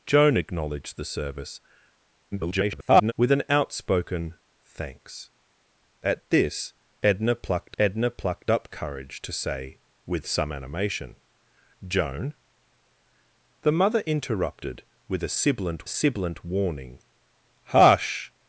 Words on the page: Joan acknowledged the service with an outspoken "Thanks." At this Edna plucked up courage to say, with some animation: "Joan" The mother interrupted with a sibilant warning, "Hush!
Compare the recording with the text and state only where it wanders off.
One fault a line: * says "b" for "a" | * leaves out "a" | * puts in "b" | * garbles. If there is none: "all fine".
* garbles
* puts in "Edna plucked"
* puts in "sibilant"